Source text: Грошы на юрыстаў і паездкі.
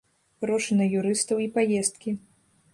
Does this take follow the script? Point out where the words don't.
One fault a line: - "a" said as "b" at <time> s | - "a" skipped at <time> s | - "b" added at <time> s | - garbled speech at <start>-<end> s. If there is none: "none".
none